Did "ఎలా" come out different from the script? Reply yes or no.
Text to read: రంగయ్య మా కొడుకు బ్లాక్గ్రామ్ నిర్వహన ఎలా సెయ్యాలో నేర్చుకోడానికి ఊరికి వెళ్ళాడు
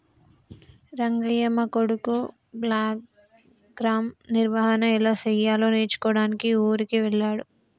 no